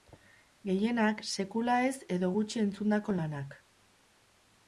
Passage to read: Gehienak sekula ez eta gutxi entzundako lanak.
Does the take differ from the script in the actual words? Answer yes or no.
yes